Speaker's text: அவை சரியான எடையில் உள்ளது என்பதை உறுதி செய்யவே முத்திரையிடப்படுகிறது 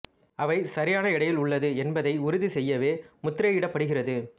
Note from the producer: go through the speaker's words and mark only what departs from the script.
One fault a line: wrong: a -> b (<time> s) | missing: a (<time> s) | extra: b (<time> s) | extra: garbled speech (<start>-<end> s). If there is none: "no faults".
no faults